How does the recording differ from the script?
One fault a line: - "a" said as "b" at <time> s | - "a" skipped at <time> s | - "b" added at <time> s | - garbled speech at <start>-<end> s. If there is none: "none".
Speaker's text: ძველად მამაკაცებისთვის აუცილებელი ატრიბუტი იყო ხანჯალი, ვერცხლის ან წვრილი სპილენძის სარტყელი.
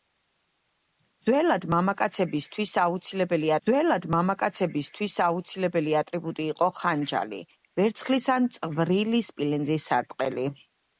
- "ძველად მამაკაცებისთვის აუცილებელი" added at 3.7 s